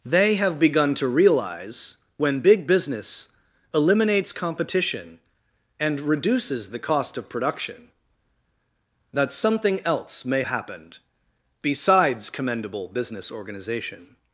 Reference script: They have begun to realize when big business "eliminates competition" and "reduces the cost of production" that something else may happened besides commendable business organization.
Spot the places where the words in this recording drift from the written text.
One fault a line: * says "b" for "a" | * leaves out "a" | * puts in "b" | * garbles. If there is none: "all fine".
all fine